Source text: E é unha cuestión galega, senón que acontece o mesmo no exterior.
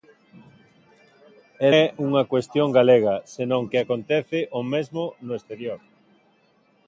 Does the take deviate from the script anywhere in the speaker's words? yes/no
no